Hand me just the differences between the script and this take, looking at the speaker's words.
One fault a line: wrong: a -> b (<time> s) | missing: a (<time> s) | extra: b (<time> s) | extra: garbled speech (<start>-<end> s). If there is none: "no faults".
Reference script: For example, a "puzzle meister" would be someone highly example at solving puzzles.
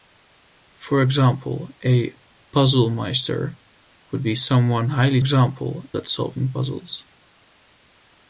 no faults